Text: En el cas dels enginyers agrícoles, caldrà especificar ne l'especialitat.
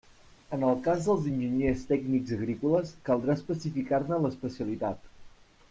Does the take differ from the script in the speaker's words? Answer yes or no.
yes